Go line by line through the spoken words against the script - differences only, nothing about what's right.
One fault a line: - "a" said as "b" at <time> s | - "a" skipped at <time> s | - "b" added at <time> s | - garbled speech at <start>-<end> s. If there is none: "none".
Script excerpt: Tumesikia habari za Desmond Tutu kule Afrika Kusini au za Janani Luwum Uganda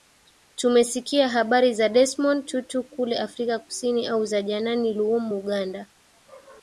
none